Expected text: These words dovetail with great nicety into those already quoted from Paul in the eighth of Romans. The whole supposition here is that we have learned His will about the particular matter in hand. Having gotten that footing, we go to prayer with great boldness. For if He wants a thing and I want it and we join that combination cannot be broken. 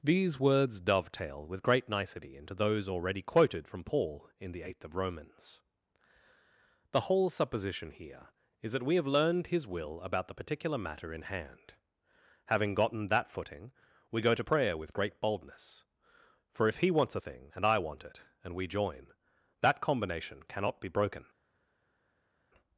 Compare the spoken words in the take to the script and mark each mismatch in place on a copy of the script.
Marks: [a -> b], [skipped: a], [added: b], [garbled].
These words dovetail with great nicety into those already quoted from Paul in the eighth of Romans. The whole supposition here is that we have learned His will about the particular matter in hand. Having gotten that footing, we go to prayer with great boldness. For if He wants a thing and I want it and we join that combination cannot be broken.